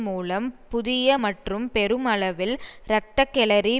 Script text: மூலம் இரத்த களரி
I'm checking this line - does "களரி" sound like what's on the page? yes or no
yes